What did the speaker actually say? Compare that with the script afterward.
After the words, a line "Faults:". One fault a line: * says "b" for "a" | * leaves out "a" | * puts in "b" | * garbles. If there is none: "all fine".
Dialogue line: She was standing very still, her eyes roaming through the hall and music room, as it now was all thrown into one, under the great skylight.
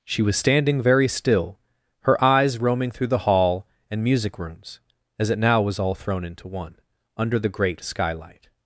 She was standing very still, her eyes roaming through the hall and music rooms, as it now was all thrown into one, under the great skylight.
Faults:
* says "rooms" for "room"